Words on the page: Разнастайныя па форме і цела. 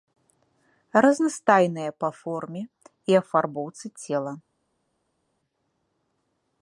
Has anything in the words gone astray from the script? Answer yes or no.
yes